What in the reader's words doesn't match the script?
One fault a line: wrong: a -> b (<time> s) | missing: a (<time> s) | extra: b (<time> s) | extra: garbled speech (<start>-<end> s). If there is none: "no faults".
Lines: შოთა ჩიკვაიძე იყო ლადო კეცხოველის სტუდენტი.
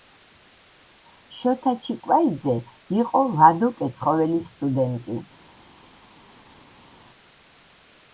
no faults